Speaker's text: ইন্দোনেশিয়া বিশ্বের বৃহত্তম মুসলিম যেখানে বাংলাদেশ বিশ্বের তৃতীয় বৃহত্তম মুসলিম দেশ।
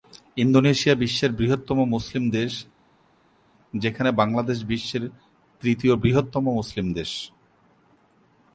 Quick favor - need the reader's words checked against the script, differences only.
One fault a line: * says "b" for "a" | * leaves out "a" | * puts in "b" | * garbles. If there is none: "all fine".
* puts in "দেশ"